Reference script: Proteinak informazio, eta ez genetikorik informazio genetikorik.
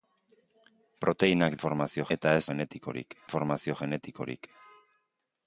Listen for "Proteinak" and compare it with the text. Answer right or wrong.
right